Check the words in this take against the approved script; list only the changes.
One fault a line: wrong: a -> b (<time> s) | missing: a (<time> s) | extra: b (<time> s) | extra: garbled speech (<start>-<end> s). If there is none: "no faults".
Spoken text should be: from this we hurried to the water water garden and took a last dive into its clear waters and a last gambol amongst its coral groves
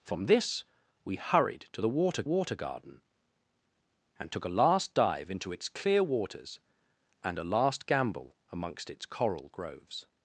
no faults